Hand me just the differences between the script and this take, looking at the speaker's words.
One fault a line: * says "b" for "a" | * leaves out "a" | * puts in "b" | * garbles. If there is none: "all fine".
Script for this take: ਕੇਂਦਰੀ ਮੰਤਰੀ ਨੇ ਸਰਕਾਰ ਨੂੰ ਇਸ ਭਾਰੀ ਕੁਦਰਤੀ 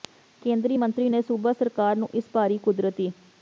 * puts in "ਸੂਬਾ"